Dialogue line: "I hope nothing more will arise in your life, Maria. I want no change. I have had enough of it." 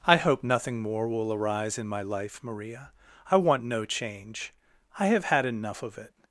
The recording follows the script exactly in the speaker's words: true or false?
false